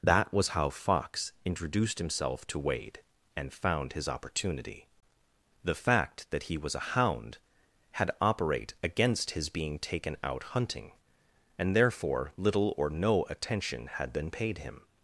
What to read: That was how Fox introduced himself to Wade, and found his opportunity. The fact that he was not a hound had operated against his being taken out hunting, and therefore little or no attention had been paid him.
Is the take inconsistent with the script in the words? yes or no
yes